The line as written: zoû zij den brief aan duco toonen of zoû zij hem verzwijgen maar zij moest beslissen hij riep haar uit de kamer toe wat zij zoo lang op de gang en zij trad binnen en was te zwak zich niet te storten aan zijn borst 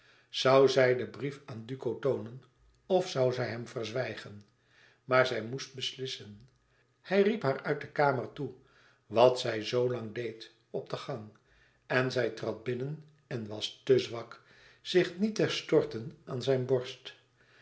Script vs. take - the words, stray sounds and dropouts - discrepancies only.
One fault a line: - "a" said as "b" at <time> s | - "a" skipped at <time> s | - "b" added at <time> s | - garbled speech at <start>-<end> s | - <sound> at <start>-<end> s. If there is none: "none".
- "deed" added at 10.1 s